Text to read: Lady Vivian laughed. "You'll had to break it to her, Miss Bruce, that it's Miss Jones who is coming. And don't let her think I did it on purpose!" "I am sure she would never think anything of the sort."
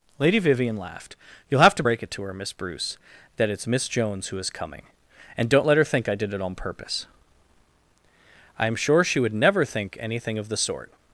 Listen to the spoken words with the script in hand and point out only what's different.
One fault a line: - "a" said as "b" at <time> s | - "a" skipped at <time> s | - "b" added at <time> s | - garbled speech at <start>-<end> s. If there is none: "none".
- "had" said as "have" at 1.6 s